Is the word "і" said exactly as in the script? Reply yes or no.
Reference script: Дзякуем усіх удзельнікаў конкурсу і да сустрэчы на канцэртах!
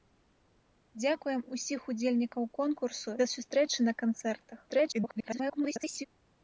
no